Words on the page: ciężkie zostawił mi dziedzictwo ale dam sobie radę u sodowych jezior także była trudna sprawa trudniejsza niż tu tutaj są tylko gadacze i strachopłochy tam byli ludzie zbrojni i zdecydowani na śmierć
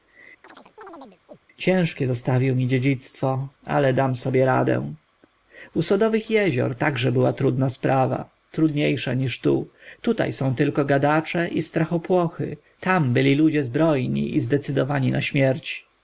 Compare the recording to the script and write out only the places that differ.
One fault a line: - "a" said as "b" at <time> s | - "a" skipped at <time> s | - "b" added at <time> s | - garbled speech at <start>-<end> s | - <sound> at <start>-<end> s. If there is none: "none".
- chirp at 0.4-1.4 s